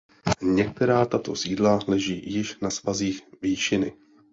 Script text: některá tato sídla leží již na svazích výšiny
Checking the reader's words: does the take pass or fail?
pass